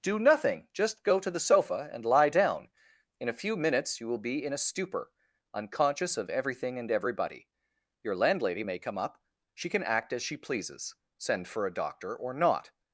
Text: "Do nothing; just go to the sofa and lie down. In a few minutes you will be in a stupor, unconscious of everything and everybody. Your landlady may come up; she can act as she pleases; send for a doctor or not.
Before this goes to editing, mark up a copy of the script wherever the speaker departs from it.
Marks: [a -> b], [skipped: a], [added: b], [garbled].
"Do nothing; just go to the sofa and lie down. In a few minutes you will be in a stupor, unconscious of everything and everybody. Your landlady may come up; she can act as she pleases; send for a doctor or not.